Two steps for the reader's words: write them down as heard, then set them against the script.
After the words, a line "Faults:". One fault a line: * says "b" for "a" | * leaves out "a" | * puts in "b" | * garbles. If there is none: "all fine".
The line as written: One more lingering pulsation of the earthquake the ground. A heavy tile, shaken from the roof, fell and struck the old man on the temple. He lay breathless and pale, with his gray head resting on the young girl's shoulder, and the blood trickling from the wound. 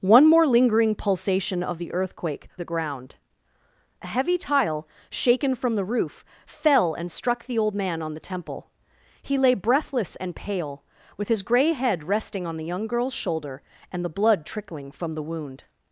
One more lingering pulsation of the earthquake the ground. A heavy tile, shaken from the roof, fell and struck the old man on the temple. He lay breathless and pale, with his gray head resting on the young girl's shoulder, and the blood trickling from the wound.
Faults:
all fine